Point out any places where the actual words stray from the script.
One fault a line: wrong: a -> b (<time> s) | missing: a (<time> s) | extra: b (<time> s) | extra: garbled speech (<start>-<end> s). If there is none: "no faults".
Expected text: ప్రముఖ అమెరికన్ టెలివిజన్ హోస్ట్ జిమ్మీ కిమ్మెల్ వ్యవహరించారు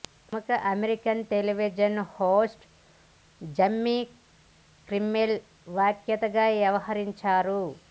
extra: వ్యాఖ్యాతగా (5.7 s)